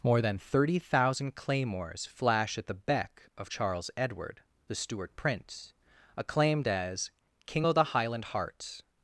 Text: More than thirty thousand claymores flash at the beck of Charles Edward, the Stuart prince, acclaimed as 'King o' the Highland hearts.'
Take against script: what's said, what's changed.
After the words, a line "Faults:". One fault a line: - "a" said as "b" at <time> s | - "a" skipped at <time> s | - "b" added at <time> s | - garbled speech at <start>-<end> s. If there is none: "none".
More than thirty thousand claymores flash at the beck of Charles Edward, the Stuart prince, acclaimed as 'King o' the Highland hearts.'
Faults:
none